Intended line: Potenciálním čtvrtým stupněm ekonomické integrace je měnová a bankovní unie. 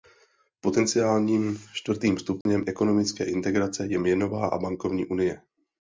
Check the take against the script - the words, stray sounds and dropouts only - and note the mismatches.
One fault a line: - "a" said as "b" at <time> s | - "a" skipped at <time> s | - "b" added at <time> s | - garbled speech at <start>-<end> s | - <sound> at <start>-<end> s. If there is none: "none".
- dropout at 2.4-2.5 s